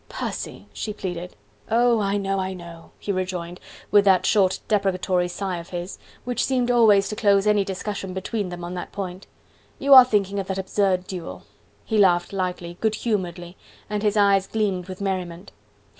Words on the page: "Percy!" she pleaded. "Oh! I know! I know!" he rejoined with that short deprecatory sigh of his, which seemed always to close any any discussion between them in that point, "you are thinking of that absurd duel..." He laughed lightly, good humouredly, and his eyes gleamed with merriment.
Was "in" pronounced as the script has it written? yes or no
no